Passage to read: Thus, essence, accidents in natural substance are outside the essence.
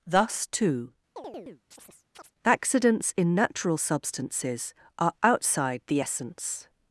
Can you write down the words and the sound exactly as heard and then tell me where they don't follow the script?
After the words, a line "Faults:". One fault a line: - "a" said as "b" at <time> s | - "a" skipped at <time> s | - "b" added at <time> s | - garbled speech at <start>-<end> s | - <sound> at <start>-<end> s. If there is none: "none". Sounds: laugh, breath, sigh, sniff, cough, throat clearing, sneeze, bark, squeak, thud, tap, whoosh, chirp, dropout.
Thus, too, accidents in natural substances are outside the essence.
Faults:
- "essence" said as "too" at 0.5 s
- chirp at 1.2-2.3 s
- "substance" said as "substances" at 3.8 s